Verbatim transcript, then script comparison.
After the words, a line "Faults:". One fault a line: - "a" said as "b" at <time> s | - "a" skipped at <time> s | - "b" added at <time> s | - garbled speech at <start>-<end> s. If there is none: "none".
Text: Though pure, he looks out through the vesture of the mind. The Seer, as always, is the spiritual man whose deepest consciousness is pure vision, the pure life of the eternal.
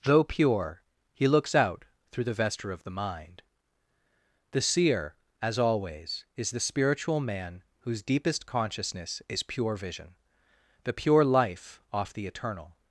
Though pure, he looks out through the vesture of the mind. The Seer, as always, is the spiritual man whose deepest consciousness is pure vision, the pure life off the eternal.
Faults:
- "of" said as "off" at 11.9 s